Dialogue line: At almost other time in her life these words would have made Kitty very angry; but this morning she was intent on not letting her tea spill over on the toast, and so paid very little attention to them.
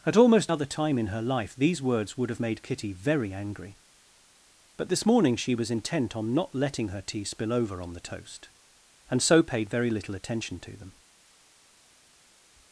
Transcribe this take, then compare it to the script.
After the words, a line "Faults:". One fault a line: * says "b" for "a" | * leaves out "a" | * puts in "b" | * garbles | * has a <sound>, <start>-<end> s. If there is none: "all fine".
At almost other time in her life these words would have made Kitty very angry; but this morning she was intent on not letting her tea spill over on the toast, and so paid very little attention to them.
Faults:
all fine